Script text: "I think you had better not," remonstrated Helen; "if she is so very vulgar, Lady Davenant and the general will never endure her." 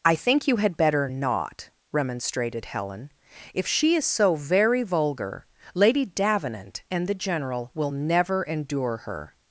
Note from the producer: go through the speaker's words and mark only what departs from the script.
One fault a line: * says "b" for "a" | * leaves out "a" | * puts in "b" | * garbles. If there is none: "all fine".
all fine